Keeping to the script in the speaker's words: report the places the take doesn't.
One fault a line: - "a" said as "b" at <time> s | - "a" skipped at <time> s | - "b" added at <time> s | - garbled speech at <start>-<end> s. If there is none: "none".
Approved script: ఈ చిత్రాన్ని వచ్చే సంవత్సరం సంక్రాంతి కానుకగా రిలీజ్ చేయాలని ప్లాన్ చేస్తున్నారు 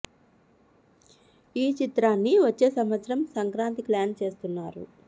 - "కానుకగా రిలీజ్ చేయాలని" skipped at 3.8 s